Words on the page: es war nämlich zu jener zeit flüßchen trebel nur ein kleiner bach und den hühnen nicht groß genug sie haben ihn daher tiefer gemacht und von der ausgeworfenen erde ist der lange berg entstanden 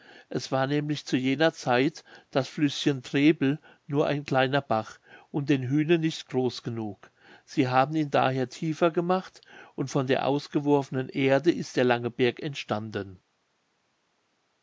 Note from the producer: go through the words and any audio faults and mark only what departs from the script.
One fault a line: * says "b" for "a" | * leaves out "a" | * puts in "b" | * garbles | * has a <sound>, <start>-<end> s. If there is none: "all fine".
* puts in "das"